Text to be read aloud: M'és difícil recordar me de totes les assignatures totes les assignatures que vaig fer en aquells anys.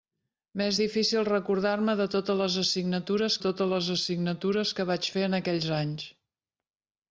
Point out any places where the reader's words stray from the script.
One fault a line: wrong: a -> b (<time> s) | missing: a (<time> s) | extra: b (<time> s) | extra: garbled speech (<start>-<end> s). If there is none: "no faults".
no faults